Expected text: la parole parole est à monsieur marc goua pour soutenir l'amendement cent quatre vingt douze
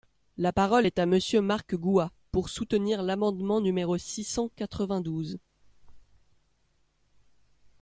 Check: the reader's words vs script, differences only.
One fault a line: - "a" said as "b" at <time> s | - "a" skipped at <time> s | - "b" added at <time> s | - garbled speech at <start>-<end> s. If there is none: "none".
- "parole" skipped at 0.9 s
- "numéro six" added at 3.6 s